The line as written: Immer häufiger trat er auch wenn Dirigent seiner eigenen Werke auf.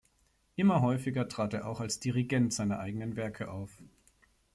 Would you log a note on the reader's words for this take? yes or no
yes